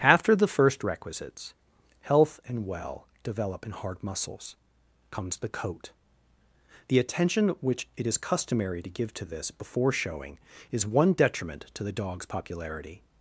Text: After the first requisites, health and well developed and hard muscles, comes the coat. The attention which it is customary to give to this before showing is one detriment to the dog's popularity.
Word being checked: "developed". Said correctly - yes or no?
no